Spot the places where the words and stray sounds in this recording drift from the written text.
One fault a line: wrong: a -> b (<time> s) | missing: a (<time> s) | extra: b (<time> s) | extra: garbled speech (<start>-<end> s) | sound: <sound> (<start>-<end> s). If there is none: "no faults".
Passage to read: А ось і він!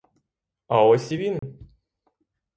sound: dropout (1.4-1.4 s)